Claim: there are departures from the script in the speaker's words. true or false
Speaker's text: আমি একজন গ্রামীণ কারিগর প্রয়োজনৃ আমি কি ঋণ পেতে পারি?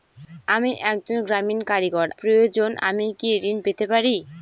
false